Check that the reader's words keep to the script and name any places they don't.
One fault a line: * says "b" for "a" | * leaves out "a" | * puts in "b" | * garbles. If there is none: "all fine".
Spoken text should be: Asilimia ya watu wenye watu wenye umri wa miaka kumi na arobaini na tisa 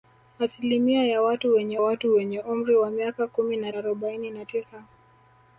all fine